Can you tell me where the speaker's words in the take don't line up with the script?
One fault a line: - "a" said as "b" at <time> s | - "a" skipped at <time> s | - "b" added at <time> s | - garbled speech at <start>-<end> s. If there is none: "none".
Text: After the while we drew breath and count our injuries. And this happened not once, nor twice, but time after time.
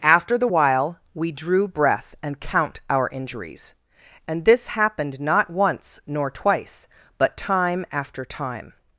none